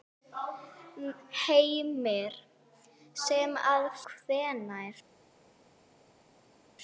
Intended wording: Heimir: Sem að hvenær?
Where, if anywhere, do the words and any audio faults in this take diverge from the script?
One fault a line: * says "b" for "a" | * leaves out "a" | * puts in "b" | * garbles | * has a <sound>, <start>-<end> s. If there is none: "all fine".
all fine